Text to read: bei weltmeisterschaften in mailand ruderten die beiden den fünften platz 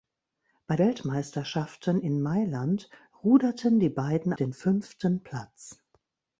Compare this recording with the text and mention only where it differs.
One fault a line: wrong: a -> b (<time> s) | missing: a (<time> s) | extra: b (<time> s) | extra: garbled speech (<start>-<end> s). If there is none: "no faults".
no faults